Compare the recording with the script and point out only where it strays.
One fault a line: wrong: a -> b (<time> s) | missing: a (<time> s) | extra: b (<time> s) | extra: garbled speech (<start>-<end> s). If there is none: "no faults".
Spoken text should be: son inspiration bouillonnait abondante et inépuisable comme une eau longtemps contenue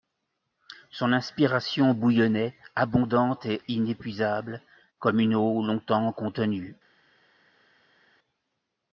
no faults